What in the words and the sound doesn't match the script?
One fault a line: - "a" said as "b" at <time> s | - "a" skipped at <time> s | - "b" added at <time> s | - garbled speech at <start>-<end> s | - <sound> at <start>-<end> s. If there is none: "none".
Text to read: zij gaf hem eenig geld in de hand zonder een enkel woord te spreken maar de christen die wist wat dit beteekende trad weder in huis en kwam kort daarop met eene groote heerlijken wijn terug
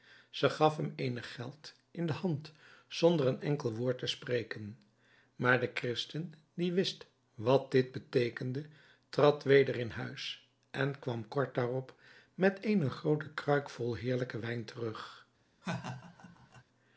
- "kruik vol" added at 13.3 s
- laugh at 15.6-16.6 s